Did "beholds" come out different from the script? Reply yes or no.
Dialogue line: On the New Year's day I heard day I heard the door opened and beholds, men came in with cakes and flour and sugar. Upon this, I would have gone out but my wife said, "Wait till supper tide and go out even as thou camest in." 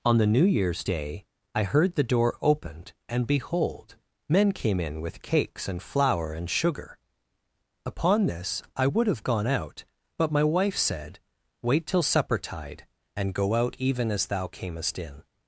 yes